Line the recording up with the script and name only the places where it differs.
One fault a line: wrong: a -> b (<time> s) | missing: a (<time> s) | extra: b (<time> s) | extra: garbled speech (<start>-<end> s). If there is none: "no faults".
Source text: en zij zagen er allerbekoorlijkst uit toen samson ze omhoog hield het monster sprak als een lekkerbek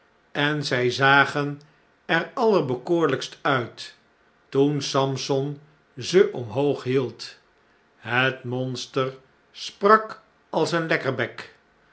no faults